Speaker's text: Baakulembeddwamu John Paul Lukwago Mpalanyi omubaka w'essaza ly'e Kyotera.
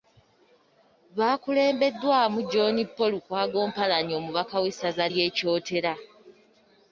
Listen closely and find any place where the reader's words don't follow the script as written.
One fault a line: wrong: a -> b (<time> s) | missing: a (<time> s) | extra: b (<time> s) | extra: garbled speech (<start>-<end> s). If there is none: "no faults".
no faults